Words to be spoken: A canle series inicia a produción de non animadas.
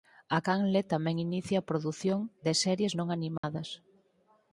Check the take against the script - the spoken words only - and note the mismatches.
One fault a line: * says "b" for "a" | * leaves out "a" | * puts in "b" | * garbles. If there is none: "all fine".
* says "tamén" for "series"
* puts in "series"